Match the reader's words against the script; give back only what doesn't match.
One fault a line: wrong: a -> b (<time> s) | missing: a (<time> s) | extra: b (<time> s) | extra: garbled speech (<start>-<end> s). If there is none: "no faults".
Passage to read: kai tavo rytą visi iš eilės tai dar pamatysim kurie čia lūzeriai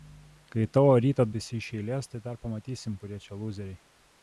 no faults